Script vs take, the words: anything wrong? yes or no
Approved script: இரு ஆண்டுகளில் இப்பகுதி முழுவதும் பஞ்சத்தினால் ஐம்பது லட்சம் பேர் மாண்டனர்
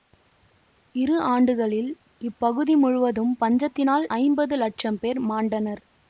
no